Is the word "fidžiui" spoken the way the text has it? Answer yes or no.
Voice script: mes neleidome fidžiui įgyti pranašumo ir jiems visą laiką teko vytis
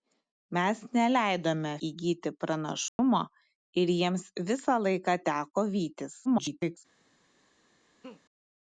no